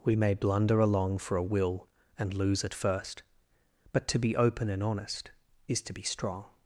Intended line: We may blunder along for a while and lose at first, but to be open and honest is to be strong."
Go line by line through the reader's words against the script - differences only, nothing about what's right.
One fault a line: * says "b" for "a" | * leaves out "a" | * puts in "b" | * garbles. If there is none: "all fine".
* says "will" for "while"